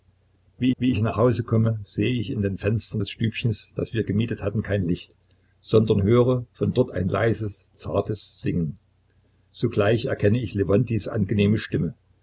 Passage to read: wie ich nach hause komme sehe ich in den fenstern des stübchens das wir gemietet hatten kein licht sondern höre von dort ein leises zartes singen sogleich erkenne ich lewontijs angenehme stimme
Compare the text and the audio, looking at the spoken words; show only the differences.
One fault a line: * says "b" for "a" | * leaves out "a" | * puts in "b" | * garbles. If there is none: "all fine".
* puts in "wie"